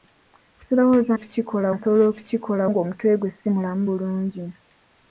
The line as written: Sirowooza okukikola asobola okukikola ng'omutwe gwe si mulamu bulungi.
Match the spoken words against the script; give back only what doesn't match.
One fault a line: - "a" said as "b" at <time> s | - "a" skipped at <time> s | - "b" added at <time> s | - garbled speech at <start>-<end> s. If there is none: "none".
none